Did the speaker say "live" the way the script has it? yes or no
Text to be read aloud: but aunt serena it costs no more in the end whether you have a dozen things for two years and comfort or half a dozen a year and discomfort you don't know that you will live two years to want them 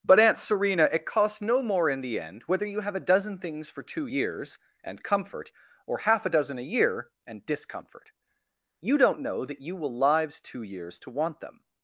no